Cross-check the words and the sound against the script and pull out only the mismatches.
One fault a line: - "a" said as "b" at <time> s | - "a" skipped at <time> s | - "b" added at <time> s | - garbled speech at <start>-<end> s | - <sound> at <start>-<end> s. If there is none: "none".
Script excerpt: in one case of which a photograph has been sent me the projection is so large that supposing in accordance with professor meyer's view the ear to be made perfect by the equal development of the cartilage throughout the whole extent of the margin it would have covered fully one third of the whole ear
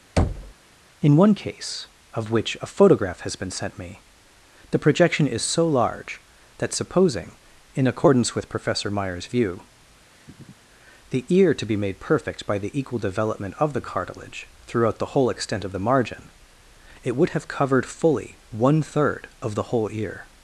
- thud at 0.2-0.5 s
- sniff at 10.1-10.7 s